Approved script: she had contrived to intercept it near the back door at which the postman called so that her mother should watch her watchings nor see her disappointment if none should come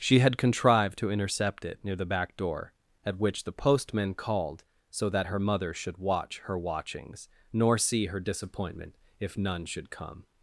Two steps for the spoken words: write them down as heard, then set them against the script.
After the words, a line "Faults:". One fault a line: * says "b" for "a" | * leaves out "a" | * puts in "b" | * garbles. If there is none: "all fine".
she had contrived to intercept it near the back door at which the postman called so that her mother should watch her watchings nor see her disappointment if none should come
Faults:
all fine